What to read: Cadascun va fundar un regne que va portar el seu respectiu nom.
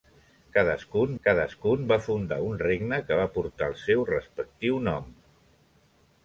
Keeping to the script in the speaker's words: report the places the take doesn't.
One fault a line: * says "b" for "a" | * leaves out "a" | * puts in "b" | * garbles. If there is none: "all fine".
* puts in "cadascun"